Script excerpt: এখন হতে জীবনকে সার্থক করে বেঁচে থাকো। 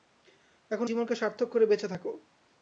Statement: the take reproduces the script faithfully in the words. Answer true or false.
false